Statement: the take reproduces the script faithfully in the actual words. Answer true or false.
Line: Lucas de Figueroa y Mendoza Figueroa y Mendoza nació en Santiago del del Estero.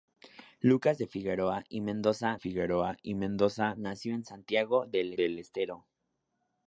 true